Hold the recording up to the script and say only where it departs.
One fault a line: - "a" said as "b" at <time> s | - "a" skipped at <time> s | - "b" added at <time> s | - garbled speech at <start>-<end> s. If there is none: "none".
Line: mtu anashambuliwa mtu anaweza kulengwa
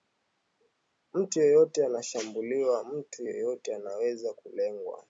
- "yeyote" added at 1.4 s
- "yeyote" added at 3.2 s